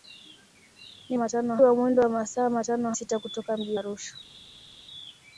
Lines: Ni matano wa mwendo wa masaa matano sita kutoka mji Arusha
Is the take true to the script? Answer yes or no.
yes